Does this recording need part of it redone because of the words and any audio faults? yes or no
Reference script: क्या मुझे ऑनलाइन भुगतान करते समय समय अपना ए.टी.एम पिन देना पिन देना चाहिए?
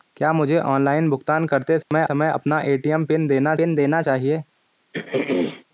yes